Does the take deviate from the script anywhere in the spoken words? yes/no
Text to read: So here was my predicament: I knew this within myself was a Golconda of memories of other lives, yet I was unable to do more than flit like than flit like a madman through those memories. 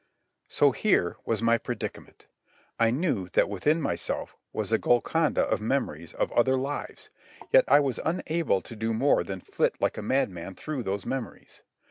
yes